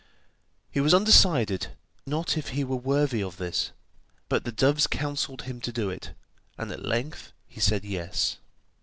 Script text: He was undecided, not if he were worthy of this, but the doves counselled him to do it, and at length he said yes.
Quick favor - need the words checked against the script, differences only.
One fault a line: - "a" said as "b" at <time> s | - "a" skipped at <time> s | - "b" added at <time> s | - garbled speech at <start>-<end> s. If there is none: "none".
none